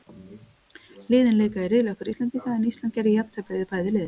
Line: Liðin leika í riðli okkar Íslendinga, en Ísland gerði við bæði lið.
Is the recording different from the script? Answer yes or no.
yes